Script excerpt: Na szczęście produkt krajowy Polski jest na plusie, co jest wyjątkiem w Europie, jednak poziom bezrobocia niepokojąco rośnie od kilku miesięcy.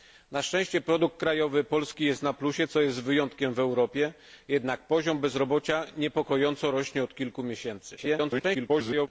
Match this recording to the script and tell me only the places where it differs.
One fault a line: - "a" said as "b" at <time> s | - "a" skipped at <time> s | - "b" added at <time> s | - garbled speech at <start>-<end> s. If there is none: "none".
- garbled speech at 8.0-9.1 s